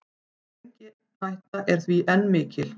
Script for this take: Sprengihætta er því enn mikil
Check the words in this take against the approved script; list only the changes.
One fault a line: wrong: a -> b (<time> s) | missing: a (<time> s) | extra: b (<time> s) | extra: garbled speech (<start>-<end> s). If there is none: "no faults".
no faults